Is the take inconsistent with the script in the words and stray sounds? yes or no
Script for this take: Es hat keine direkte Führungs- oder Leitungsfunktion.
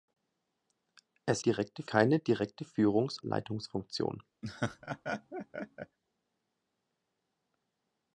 yes